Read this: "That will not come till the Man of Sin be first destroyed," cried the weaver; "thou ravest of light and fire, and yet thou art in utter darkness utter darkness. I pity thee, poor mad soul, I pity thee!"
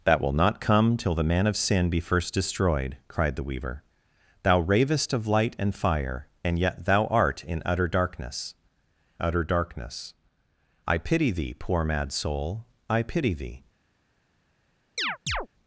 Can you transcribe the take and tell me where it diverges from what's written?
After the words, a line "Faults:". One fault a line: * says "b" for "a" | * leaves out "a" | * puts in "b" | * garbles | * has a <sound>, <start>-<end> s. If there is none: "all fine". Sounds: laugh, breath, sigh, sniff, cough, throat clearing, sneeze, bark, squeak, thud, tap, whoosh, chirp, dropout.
"That will not come till the Man of Sin be first destroyed," cried the weaver; "thou ravest of light and fire, and yet thou art in utter darkness utter darkness. I pity thee, poor mad soul, I pity thee!"
Faults:
* has a chirp, 15.0-15.5 s